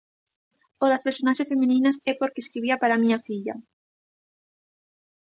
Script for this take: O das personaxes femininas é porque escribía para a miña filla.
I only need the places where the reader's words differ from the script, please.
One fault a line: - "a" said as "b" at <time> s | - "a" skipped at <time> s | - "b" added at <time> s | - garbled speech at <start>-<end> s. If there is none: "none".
none